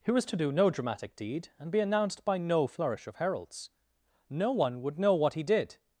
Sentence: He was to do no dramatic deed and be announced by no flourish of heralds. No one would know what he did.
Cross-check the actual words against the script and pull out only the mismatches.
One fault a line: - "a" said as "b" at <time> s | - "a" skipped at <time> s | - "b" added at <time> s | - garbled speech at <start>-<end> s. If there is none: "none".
none